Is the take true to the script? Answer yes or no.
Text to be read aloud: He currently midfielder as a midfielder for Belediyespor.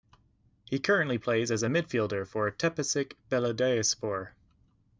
no